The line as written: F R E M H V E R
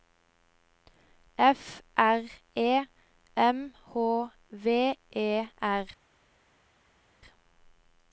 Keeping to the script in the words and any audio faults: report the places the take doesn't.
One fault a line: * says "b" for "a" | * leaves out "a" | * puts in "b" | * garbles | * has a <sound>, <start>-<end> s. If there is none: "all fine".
all fine